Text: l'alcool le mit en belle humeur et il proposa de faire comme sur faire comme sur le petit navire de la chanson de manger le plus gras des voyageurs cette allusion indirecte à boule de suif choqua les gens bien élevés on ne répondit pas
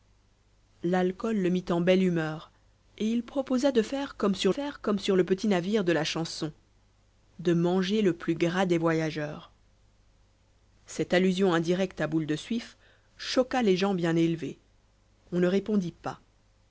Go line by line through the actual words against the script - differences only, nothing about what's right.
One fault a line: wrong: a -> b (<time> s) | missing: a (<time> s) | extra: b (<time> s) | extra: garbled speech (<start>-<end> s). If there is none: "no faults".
no faults